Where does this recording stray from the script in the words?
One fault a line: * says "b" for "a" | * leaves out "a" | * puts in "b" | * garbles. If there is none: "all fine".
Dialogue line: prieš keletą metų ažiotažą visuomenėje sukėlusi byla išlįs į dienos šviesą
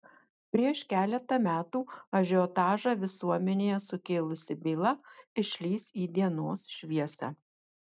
all fine